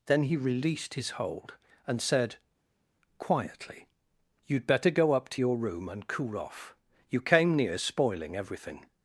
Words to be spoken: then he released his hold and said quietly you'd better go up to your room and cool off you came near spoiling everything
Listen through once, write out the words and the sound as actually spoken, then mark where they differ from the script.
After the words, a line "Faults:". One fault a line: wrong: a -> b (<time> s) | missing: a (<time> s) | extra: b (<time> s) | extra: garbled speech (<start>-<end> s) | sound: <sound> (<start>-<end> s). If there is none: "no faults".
then he released his hold and said quietly you'd better go up to your room and cool off you came near spoiling everything
Faults:
no faults